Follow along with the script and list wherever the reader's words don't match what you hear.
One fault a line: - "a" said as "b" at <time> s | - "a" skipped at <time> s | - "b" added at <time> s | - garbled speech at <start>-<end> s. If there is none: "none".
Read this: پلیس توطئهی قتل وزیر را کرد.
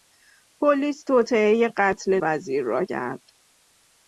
none